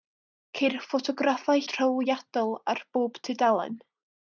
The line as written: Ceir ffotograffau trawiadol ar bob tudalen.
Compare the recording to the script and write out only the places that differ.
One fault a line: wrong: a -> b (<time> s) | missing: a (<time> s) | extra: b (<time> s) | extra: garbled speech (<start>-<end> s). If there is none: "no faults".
no faults